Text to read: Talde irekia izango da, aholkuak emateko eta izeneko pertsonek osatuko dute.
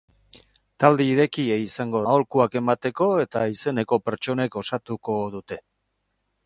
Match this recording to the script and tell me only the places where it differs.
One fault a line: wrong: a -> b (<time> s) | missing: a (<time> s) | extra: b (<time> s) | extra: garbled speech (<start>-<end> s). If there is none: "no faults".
missing: da (2.0 s)